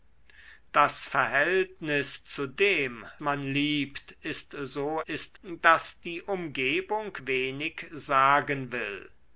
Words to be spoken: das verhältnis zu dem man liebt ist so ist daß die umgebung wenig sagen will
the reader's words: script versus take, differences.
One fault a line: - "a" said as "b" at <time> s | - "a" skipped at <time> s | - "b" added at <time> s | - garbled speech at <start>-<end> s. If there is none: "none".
none